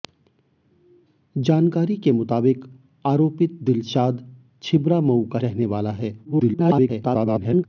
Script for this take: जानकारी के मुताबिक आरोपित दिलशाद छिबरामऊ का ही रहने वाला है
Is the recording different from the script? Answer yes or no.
yes